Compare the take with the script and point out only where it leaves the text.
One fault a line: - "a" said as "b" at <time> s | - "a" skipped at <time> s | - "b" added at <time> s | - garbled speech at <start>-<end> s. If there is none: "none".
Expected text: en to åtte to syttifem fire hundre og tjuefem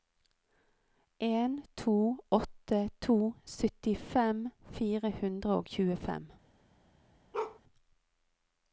none